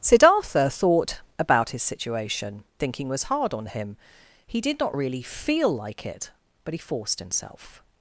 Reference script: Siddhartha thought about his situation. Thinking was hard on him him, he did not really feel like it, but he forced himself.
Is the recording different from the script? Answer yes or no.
yes